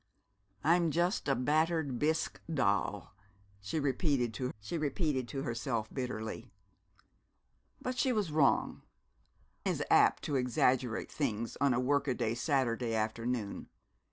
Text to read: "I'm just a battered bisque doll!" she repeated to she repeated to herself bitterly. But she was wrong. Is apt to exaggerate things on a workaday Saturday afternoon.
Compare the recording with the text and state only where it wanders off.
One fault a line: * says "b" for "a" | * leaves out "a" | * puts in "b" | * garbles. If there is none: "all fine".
all fine